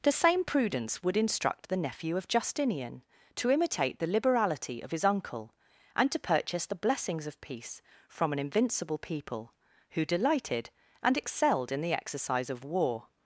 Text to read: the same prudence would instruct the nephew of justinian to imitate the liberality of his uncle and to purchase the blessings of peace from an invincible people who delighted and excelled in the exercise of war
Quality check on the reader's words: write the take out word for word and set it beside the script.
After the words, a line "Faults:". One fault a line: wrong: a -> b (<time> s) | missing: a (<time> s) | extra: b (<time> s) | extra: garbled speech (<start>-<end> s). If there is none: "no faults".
the same prudence would instruct the nephew of justinian to imitate the liberality of his uncle and to purchase the blessings of peace from an invincible people who delighted and excelled in the exercise of war
Faults:
no faults